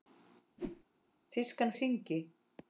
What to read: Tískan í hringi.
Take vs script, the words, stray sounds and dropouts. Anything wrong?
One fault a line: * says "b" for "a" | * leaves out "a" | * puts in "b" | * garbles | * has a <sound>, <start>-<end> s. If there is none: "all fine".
* has a whoosh, 0.6-0.8 s